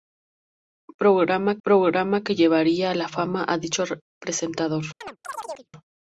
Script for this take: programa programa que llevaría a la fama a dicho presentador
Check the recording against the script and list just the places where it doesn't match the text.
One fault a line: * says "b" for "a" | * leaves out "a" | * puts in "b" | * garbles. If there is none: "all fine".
all fine